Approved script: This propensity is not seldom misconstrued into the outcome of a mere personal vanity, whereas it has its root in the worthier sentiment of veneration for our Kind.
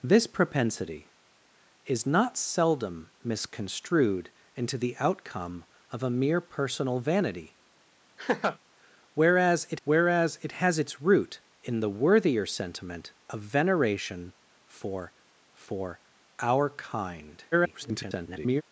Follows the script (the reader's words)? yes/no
no